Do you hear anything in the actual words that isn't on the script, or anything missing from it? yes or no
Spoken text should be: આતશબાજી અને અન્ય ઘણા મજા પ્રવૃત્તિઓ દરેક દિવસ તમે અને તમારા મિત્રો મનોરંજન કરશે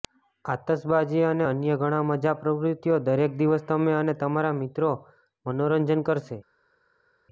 no